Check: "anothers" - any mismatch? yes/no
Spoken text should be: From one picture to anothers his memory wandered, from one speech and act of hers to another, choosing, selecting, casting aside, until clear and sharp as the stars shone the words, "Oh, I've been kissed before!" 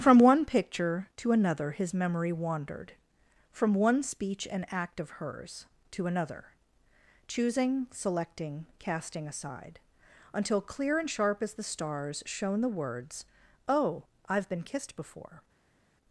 yes